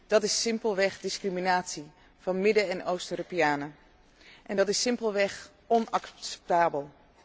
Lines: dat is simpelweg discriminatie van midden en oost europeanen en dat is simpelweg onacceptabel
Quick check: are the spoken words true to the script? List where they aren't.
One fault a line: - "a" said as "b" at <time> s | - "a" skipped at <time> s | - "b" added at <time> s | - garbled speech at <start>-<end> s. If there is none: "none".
none